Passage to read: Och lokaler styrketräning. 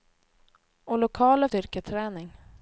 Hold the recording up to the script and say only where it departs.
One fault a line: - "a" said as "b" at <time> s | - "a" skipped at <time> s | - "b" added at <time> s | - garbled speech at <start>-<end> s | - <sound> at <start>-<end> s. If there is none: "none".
none